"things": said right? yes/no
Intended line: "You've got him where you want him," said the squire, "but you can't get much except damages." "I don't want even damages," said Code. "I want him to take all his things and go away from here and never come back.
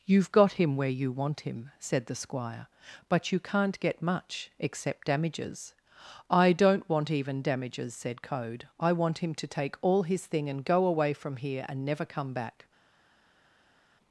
no